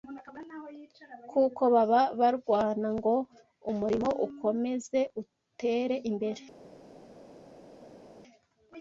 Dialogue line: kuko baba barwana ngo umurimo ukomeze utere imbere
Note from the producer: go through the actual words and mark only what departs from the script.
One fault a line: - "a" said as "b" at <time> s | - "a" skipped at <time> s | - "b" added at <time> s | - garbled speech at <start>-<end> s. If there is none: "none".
none